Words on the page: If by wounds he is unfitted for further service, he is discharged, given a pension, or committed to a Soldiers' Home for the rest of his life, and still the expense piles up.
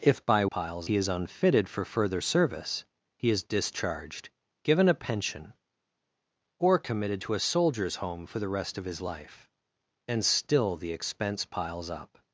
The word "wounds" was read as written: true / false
false